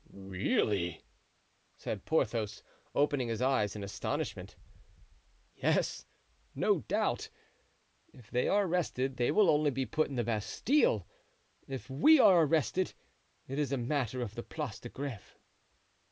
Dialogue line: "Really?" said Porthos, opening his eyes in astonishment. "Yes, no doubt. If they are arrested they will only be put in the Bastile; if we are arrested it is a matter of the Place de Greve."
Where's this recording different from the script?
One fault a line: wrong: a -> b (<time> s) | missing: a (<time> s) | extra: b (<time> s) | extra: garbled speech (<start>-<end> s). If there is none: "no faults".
no faults